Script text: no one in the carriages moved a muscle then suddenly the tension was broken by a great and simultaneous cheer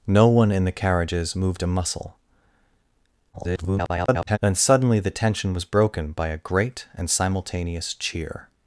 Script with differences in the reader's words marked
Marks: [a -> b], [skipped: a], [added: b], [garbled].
no one in the carriages moved a muscle [garbled] then suddenly the tension was broken by a great and simultaneous cheer